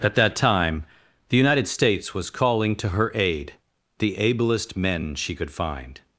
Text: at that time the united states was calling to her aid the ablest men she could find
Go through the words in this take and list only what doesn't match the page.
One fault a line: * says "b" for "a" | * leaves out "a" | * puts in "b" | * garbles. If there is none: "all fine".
all fine